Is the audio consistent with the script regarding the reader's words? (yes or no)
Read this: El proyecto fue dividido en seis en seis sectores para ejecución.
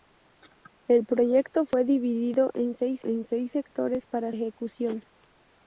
yes